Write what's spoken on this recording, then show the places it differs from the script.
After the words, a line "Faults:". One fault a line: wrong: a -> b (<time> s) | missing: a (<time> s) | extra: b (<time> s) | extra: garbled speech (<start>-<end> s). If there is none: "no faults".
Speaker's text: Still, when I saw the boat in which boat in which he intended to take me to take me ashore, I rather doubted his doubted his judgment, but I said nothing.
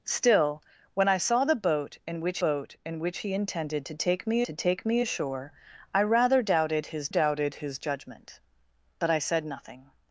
Still, when I saw the boat in which boat in which he intended to take me to take me ashore, I rather doubted his doubted his judgment, but I said nothing.
Faults:
no faults